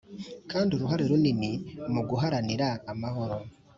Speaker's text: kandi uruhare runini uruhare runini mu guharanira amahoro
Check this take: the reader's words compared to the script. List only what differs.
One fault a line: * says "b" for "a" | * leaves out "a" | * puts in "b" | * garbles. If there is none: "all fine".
* leaves out "uruhare runini"